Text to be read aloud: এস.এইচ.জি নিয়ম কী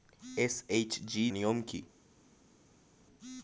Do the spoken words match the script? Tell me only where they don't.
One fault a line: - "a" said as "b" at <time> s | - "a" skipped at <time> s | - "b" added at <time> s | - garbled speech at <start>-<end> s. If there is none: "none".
none